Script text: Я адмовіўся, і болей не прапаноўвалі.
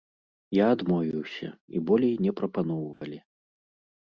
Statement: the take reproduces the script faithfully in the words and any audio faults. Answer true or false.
false